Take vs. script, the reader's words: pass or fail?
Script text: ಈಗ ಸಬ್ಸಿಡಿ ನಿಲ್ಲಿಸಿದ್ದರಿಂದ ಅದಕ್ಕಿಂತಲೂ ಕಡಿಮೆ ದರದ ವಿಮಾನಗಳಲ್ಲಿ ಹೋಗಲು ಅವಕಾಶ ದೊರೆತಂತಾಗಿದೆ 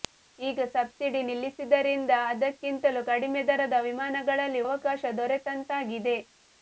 fail